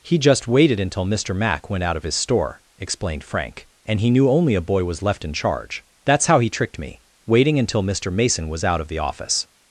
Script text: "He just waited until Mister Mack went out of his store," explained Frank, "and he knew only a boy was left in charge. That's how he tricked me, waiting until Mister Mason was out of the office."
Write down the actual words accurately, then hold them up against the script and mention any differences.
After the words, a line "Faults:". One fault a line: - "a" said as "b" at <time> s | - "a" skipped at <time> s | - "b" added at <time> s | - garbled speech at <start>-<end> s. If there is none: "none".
"He just waited until Mister Mack went out of his store," explained Frank, "and he knew only a boy was left in charge. That's how he tricked me, waiting until Mister Mason was out of the office."
Faults:
none